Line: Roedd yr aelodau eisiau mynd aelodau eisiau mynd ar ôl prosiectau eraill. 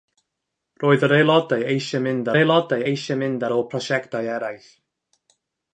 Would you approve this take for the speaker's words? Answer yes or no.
yes